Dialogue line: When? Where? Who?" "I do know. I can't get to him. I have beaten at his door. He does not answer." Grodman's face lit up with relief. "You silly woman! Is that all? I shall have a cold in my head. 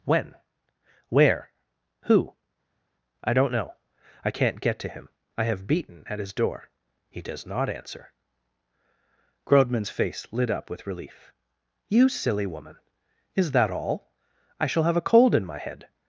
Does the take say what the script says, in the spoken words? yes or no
no